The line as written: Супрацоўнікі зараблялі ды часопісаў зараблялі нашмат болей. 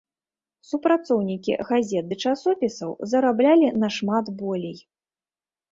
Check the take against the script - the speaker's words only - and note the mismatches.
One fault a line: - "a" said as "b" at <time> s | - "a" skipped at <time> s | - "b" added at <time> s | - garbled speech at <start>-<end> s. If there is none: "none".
- "зараблялі" said as "газет" at 1.7 s